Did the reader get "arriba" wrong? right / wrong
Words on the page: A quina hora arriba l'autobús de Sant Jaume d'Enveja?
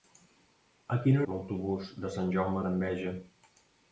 wrong